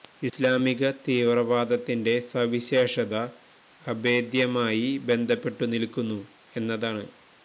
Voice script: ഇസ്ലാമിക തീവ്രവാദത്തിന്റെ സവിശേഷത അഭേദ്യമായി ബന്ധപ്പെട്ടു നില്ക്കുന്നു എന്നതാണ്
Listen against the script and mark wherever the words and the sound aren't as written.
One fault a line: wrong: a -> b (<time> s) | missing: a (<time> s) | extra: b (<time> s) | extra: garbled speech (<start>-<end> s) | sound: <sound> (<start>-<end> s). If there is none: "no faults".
no faults